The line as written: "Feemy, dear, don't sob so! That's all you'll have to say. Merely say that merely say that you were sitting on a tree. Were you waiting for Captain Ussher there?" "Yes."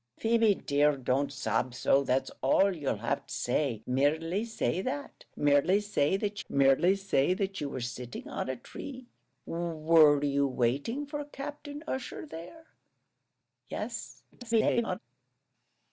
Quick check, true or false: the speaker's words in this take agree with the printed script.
false